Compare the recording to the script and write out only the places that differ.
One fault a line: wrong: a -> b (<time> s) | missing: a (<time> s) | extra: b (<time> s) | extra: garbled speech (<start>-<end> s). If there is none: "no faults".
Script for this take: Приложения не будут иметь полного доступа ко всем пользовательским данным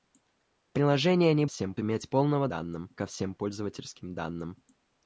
wrong: будут -> всем (1.5 s)
wrong: доступа -> данным (2.5 s)